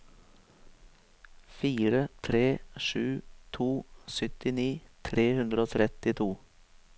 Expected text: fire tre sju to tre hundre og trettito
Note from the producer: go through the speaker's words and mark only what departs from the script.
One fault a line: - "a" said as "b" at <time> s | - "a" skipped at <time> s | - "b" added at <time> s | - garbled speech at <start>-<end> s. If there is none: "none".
- "syttini" added at 4.2 s